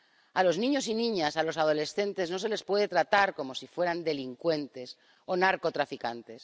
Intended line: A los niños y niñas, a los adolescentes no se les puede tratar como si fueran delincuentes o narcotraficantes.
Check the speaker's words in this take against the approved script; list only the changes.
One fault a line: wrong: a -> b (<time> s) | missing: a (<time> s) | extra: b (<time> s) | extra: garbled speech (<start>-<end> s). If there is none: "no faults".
no faults